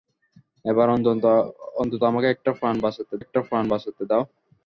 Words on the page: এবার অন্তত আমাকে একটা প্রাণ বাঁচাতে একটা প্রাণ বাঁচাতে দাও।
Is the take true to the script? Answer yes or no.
yes